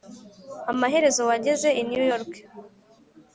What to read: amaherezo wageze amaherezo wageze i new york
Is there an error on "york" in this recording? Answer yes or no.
no